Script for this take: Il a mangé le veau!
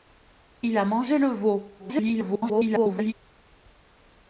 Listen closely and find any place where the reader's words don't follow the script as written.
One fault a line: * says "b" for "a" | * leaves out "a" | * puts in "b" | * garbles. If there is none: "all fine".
* garbles